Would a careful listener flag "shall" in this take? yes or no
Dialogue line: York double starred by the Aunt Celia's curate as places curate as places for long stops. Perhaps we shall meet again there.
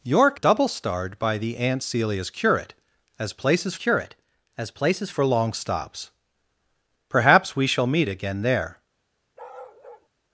no